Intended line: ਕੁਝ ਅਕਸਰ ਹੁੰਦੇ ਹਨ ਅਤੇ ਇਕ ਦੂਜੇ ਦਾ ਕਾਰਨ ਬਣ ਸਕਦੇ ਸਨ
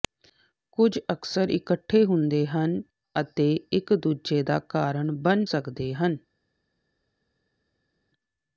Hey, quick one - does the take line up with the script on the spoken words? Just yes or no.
no